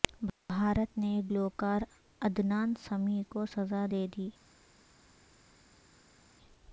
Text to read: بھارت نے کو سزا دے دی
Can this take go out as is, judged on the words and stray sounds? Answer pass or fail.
fail